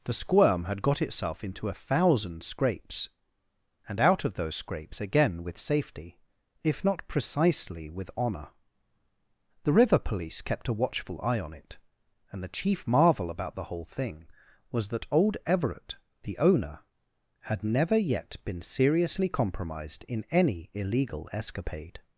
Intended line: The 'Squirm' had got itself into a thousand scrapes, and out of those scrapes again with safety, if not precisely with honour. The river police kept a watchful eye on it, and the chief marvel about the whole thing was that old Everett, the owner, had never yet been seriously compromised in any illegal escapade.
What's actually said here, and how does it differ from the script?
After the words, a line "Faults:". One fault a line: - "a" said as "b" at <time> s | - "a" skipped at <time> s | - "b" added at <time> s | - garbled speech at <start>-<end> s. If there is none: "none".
The 'Squirm' had got itself into a thousand scrapes, and out of those scrapes again with safety, if not precisely with honour. The river police kept a watchful eye on it, and the chief marvel about the whole thing was that old Everett, the owner, had never yet been seriously compromised in any illegal escapade.
Faults:
none